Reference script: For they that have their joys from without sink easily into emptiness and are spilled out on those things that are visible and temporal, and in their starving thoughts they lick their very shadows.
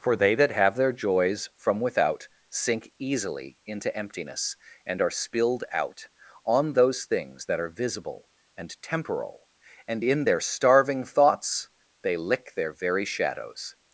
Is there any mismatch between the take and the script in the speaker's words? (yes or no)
no